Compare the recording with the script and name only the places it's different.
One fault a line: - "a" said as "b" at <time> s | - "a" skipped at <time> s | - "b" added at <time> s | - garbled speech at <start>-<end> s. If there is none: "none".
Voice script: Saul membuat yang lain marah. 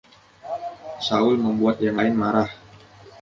none